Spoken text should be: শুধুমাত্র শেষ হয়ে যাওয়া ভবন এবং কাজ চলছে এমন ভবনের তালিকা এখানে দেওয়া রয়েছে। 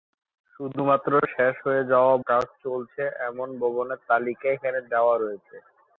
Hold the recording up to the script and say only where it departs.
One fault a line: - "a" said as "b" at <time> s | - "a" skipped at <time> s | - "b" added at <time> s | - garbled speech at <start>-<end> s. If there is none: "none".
- "ভবন এবং" skipped at 2.1 s